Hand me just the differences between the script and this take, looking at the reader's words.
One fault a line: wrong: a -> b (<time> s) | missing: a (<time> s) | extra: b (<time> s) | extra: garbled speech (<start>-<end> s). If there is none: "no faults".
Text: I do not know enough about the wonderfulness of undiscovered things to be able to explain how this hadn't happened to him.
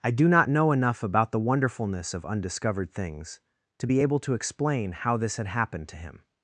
wrong: hadn't -> had (5.4 s)